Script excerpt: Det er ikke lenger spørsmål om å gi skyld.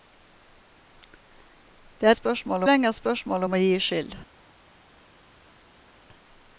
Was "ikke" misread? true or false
true